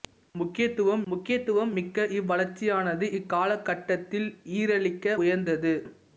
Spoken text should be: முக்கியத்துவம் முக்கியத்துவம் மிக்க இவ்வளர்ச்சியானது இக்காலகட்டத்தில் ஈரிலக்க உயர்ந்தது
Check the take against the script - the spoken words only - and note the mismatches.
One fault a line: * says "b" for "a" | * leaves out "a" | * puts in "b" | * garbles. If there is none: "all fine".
all fine